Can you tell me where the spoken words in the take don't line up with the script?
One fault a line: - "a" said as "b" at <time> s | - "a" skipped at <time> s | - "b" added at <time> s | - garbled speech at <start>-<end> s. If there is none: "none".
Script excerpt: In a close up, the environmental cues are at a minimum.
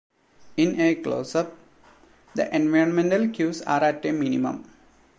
none